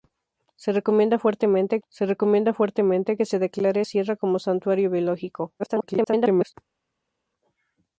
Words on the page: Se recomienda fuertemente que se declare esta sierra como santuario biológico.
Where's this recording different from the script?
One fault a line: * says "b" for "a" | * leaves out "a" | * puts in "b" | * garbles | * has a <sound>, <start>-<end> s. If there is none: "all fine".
* puts in "se recomienda fuertemente"
* leaves out "esta"
* garbles